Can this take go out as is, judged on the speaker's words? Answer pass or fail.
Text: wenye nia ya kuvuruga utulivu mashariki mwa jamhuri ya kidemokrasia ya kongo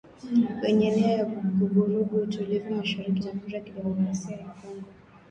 fail